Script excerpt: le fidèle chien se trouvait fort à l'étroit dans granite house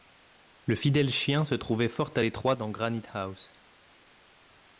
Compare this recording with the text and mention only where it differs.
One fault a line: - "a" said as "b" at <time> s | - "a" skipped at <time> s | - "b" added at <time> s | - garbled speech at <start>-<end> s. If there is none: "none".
none